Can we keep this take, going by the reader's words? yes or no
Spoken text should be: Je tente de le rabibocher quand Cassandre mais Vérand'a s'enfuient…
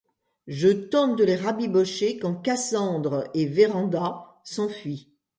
no